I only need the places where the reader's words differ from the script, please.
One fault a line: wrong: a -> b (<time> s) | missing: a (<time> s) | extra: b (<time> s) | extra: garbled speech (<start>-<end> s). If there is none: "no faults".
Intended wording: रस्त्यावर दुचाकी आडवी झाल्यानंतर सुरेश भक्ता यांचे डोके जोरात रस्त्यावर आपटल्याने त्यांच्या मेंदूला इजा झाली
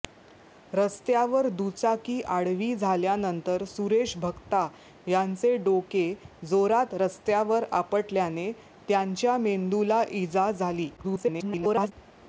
extra: garbled speech (11.0-11.9 s)